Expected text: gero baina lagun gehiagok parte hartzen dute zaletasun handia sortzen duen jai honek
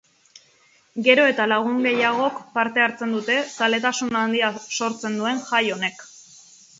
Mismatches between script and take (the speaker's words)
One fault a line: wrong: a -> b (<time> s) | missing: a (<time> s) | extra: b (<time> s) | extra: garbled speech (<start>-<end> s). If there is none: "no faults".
wrong: baina -> eta (1.3 s)